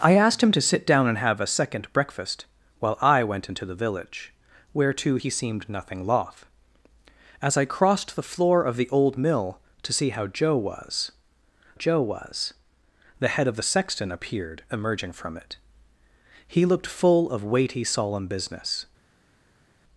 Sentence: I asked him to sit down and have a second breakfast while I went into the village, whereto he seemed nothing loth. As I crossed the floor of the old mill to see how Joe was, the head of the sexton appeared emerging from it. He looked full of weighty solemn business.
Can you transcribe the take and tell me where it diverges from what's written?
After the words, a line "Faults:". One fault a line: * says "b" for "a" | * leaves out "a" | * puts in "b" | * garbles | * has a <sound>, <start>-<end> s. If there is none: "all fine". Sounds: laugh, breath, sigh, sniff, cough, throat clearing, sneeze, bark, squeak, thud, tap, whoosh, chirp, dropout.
I asked him to sit down and have a second breakfast while I went into the village, whereto he seemed nothing loth. As I crossed the floor of the old mill to see how Joe was Joe was, the head of the sexton appeared emerging from it. He looked full of weighty solemn business.
Faults:
* puts in "Joe was"